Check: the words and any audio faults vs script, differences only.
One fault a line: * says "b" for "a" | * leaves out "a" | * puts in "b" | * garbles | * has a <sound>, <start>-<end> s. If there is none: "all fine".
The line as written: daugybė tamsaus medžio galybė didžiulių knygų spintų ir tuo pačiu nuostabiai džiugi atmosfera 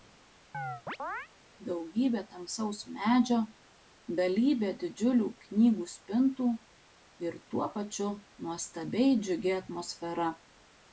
* has a chirp, 0.5-1.3 s